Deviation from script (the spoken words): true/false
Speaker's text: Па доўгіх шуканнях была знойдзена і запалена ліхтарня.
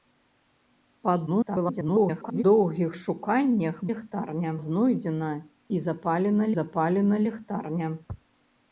true